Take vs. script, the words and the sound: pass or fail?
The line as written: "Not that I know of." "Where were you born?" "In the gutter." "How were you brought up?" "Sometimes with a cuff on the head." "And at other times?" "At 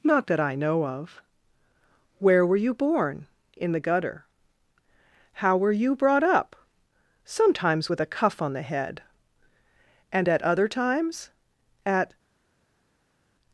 pass